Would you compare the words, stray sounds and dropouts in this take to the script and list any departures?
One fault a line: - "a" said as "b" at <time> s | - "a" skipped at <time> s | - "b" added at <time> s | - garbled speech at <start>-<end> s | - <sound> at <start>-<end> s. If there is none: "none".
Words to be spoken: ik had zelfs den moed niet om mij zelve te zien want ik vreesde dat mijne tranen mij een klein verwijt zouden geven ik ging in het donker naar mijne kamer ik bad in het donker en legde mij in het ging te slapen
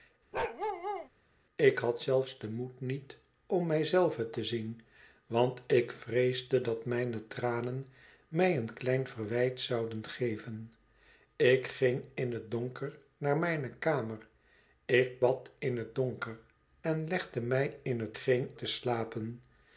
- bark at 0.3-1.1 s